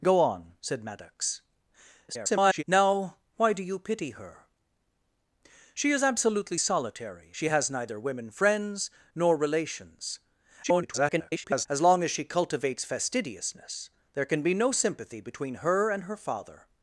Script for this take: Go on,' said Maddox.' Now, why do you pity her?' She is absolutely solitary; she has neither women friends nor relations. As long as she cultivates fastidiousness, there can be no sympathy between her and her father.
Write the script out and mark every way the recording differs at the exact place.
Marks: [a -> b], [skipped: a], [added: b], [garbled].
Go on,' said Maddox.' [garbled] Now, why do you pity her?' She is absolutely solitary; she has neither women friends nor relations. [garbled] As long as she cultivates fastidiousness, there can be no sympathy between her and her father.